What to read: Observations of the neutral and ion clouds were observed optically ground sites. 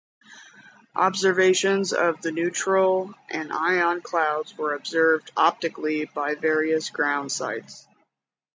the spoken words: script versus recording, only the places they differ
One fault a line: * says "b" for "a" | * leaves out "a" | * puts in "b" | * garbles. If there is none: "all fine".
* puts in "by various"